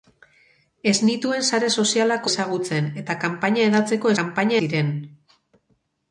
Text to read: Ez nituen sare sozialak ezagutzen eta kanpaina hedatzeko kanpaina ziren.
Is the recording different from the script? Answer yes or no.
no